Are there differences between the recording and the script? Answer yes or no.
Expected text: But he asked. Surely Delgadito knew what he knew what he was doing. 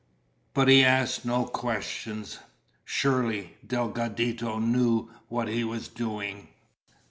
yes